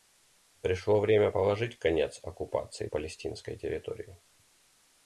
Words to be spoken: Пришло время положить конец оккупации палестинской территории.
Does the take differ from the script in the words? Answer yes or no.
no